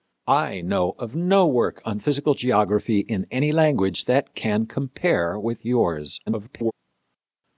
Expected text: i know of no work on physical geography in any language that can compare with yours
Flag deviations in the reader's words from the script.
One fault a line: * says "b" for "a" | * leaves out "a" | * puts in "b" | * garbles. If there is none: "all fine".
* garbles